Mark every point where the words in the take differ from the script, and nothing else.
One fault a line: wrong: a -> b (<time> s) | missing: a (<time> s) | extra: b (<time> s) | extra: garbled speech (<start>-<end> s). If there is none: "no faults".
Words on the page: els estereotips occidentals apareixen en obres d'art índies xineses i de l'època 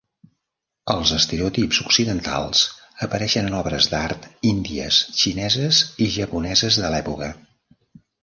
extra: japoneses (6.2 s)